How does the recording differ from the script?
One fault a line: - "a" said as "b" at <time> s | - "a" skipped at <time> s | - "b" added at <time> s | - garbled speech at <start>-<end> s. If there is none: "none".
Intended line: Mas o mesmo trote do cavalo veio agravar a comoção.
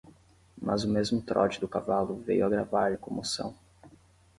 none